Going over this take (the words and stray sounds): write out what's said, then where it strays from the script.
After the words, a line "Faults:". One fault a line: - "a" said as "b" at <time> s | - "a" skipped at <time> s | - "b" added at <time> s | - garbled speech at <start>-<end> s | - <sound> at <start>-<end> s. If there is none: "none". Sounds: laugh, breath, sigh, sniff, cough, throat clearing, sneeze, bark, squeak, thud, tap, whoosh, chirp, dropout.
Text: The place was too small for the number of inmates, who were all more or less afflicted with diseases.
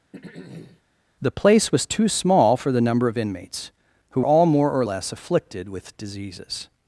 The place was too small for the number of inmates, who all more or less afflicted with diseases.
Faults:
- throat clearing at 0.1-0.8 s
- "were" skipped at 4.2 s